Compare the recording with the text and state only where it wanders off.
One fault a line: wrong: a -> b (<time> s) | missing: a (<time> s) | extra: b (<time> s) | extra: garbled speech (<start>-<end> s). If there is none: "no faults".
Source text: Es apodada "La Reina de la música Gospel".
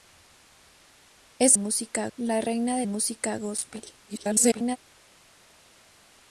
wrong: apodada -> música (1.6 s)
missing: la (2.9 s)
extra: garbled speech (4.0-4.8 s)